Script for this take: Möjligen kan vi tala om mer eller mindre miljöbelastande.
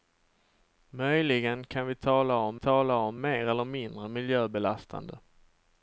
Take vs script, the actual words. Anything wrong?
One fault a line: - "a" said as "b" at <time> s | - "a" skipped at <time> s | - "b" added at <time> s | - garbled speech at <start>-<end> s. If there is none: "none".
- "tala om" added at 2.6 s